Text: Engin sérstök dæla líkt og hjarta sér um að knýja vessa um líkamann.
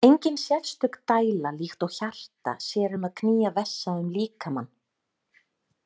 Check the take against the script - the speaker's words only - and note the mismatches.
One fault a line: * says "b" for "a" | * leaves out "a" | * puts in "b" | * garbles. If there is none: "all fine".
all fine